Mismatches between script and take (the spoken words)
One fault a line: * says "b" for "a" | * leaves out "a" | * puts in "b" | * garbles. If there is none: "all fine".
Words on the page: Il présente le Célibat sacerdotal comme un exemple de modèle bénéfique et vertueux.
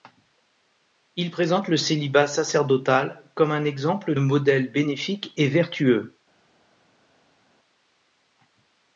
* leaves out "de"